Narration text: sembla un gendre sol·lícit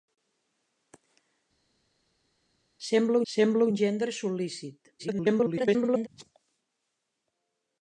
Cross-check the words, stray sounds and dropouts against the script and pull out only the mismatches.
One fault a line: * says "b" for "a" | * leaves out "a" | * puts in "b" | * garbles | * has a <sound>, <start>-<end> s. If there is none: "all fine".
* puts in "sembla"
* garbles